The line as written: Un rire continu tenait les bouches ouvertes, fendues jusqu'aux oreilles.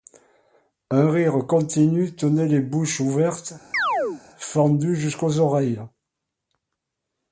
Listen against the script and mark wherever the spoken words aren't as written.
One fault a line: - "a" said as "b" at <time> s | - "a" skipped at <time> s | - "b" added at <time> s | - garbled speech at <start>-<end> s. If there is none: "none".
none